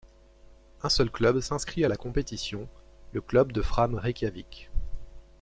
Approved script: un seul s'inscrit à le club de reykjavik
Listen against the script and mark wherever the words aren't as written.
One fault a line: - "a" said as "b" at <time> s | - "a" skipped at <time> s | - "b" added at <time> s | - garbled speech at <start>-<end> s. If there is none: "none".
- "club" added at 1.1 s
- "la compétition" added at 1.9 s
- "fram" added at 3.6 s